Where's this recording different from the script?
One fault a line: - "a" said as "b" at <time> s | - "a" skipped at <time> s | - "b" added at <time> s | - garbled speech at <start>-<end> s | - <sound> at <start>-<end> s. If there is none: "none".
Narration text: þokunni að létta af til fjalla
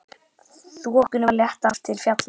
none